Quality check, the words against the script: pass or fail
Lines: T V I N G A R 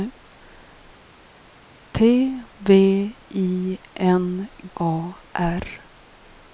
fail